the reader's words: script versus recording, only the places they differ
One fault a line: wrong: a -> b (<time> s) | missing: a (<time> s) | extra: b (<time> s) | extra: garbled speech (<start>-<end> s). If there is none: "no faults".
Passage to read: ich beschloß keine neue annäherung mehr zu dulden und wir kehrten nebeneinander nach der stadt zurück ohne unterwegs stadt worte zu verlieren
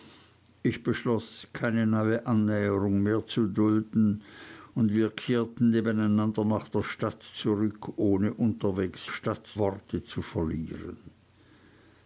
no faults